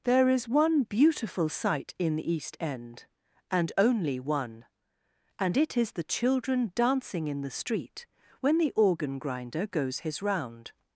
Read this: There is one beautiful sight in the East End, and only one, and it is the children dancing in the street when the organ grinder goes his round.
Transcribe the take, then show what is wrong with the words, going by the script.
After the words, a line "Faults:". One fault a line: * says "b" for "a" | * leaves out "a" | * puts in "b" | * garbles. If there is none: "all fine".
There is one beautiful sight in the East End, and only one, and it is the children dancing in the street when the organ grinder goes his round.
Faults:
all fine